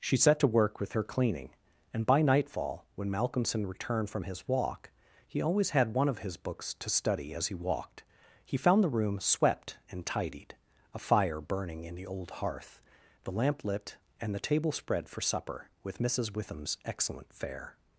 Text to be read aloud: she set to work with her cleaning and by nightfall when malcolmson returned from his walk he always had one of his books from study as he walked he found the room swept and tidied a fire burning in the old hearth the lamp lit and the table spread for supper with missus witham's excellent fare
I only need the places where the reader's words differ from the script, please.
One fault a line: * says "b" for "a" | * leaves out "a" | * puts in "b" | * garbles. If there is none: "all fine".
* says "to" for "from"